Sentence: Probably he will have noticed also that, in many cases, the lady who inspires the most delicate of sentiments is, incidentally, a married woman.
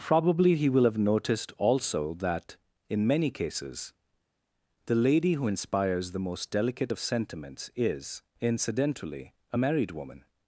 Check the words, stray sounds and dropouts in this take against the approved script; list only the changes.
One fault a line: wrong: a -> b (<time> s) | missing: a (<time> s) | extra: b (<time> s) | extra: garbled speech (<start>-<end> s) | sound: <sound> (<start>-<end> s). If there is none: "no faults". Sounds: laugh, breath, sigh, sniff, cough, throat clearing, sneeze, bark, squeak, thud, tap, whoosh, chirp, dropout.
no faults